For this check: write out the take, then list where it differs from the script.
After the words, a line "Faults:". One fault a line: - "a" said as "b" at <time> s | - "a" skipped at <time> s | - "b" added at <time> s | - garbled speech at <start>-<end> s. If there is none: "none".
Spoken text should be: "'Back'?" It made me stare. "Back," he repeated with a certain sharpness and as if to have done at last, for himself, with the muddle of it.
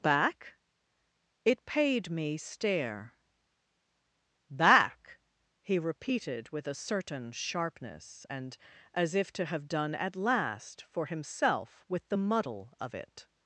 "'Back'?" It paid me stare. "Back," he repeated with a certain sharpness and as if to have done at last, for himself, with the muddle of it.
Faults:
- "made" said as "paid" at 1.6 s